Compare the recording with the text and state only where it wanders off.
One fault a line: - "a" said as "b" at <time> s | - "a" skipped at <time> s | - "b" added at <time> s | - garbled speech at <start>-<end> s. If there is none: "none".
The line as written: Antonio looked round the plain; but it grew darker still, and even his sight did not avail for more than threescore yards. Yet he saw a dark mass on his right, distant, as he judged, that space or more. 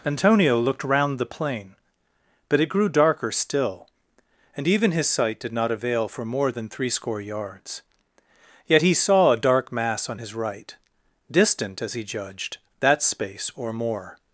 none